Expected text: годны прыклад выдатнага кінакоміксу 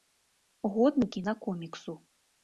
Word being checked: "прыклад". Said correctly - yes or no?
no